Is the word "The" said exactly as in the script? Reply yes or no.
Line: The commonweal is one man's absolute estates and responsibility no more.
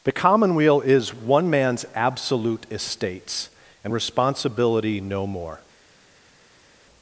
yes